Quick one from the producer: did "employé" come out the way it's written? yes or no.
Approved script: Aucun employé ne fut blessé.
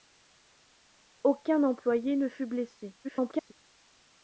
yes